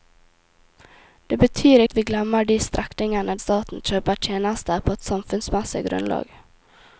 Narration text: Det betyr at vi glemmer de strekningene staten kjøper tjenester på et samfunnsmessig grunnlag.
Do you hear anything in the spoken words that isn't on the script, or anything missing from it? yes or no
no